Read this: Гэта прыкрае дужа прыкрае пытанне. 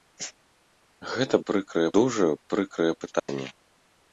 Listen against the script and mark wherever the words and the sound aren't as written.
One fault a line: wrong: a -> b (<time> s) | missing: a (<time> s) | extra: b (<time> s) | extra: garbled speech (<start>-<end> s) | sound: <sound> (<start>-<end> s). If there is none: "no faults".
sound: dropout (3.2-3.3 s)